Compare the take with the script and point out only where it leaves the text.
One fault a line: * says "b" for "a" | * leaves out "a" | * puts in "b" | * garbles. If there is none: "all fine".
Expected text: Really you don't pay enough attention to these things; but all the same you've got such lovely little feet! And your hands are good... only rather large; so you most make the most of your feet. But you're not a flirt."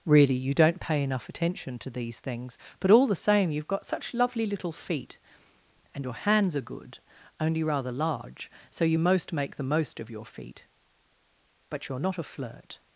all fine